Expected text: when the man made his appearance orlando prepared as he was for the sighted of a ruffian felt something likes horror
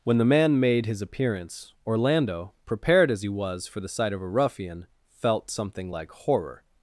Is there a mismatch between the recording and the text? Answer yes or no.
yes